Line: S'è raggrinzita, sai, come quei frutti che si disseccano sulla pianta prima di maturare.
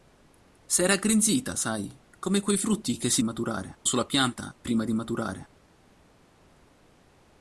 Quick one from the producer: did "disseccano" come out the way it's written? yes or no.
no